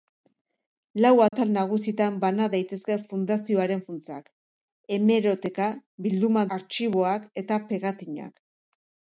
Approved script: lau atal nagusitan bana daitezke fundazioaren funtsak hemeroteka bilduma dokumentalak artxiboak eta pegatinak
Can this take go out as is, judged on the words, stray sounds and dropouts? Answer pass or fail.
fail